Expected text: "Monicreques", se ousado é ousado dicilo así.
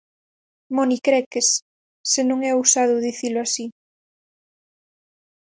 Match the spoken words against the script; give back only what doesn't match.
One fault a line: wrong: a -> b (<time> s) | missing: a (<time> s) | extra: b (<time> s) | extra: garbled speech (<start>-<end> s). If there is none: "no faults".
wrong: ousado -> non (2.3 s)